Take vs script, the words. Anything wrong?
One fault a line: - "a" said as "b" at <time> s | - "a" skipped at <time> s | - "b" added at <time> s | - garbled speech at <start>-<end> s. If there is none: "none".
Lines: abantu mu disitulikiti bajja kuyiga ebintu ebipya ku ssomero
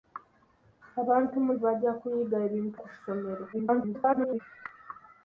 - "disitulikiti" skipped at 1.5 s
- "ebipya" skipped at 2.8 s
- garbled speech at 3.5-4.4 s